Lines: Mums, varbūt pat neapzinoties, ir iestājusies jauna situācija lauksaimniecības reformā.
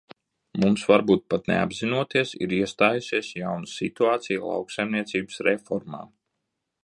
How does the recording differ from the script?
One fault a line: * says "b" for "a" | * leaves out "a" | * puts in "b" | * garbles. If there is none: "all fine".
all fine